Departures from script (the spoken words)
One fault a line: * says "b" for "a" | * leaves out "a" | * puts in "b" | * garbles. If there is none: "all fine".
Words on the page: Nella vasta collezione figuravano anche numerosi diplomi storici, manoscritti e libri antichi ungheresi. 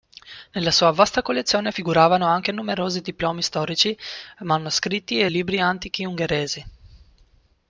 * puts in "sua"